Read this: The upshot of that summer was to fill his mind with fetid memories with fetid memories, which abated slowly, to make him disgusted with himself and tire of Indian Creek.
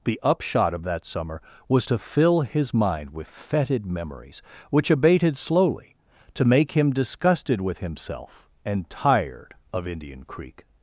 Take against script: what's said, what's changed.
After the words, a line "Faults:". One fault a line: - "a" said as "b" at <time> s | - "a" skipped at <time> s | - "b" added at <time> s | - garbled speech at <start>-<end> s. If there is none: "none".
The upshot of that summer was to fill his mind with fetid memories, which abated slowly, to make him disgusted with himself and tired of Indian Creek.
Faults:
- "with fetid memories" skipped at 4.4 s
- "tire" said as "tired" at 8.9 s